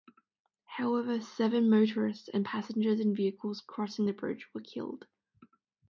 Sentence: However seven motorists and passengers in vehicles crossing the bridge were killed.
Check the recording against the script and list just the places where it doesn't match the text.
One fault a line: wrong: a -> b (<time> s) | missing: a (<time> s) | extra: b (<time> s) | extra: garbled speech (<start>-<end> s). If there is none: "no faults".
no faults